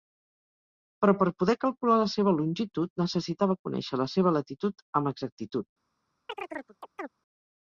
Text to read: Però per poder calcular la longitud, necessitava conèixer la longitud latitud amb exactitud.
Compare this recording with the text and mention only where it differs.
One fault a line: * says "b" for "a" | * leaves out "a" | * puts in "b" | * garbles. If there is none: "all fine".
* puts in "seva"
* says "seva" for "longitud"